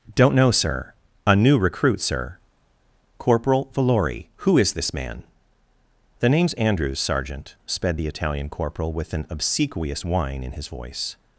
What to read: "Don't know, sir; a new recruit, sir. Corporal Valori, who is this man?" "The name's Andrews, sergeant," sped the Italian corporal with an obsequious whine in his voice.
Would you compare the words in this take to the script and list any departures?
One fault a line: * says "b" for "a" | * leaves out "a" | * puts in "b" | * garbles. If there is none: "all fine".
all fine